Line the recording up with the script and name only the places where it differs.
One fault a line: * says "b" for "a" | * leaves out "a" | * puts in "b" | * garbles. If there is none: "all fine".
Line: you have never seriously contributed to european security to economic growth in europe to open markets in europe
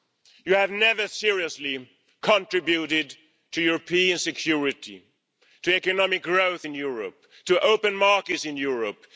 all fine